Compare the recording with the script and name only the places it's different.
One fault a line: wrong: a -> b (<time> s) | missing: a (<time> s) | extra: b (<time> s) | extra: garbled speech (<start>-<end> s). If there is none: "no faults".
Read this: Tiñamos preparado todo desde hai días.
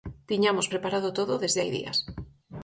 no faults